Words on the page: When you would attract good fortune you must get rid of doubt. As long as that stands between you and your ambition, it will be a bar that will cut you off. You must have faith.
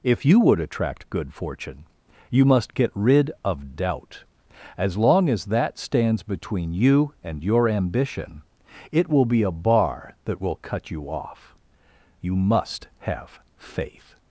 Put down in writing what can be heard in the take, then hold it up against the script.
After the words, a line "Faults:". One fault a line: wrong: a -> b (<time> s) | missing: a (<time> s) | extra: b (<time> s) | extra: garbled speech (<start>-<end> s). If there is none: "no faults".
If you would attract good fortune you must get rid of doubt. As long as that stands between you and your ambition, it will be a bar that will cut you off. You must have faith.
Faults:
wrong: When -> If (0.0 s)